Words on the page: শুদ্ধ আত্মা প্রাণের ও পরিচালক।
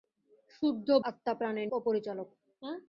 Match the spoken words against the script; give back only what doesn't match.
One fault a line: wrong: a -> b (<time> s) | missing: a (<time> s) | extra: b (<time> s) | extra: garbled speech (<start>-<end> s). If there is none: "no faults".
no faults